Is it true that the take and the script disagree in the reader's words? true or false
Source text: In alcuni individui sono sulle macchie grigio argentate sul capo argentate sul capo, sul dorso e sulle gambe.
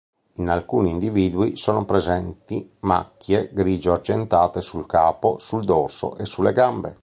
true